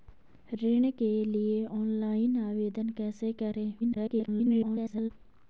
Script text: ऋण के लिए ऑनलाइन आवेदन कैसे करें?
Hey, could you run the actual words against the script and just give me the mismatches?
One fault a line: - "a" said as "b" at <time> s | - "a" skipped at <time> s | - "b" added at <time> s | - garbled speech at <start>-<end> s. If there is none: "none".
- garbled speech at 3.8-5.1 s